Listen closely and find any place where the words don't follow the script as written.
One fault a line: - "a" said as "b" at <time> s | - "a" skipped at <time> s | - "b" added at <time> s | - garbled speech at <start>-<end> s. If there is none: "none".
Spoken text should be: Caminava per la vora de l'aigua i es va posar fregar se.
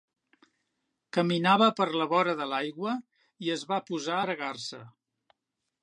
none